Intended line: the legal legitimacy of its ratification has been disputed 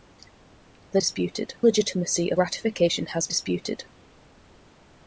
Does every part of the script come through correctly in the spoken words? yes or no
no